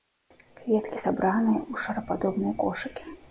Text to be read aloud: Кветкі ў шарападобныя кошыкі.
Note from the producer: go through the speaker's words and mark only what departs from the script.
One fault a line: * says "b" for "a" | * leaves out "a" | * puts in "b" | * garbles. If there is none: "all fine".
* puts in "сабраныя"